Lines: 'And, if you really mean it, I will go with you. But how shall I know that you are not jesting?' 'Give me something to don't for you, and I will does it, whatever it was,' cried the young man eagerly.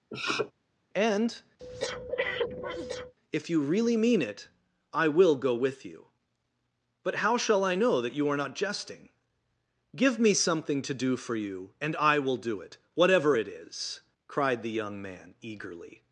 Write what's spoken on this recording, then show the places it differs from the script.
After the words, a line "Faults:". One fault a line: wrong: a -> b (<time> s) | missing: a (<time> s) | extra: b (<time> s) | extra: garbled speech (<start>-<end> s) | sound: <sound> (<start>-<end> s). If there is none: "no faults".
'And, if you really mean it, I will go with you. But how shall I know that you are not jesting?' 'Give me something to do for you, and I will do it, whatever it is,' cried the young man eagerly.
Faults:
sound: sniff (0.1-0.5 s)
sound: breath (1.6-3.1 s)
wrong: don't -> do (10.9 s)
wrong: does -> do (12.4 s)
wrong: was -> is (13.5 s)